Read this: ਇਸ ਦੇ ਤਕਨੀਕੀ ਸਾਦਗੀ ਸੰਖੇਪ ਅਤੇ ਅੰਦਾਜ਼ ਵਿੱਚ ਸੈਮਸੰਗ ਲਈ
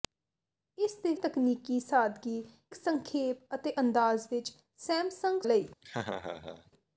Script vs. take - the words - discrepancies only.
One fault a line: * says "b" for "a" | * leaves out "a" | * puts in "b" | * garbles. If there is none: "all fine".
all fine